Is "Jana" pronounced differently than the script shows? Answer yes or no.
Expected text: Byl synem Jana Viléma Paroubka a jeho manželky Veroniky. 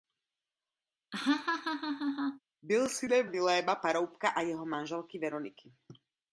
yes